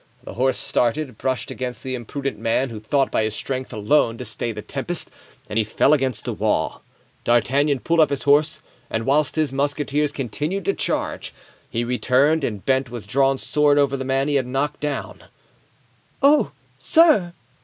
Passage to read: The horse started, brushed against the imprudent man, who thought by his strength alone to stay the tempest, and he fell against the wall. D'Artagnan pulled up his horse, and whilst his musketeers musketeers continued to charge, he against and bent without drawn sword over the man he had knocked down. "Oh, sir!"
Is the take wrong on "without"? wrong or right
wrong